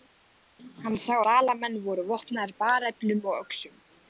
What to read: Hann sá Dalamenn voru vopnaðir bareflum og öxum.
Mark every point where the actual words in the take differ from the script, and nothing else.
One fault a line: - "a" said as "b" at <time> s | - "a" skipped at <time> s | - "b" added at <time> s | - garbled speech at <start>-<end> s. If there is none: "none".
none